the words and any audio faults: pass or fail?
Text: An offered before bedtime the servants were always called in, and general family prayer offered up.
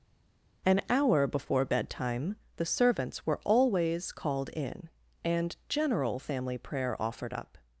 fail